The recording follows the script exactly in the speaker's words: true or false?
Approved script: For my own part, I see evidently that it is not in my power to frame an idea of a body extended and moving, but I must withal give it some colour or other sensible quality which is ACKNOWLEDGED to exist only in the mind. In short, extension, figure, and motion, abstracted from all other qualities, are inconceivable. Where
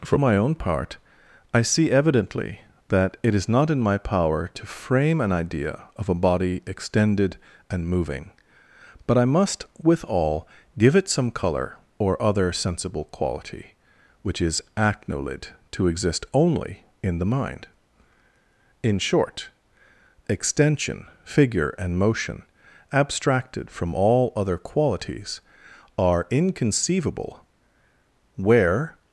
true